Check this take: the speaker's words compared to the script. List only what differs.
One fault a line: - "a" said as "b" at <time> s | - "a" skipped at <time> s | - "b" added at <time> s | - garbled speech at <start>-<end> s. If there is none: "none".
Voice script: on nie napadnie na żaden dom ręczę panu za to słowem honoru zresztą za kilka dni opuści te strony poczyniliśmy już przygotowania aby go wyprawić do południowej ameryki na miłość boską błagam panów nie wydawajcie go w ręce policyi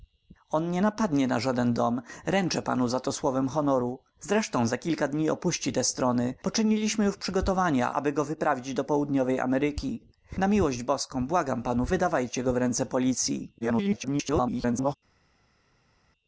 - "nie" skipped at 11.9 s
- garbled speech at 13.6-15.0 s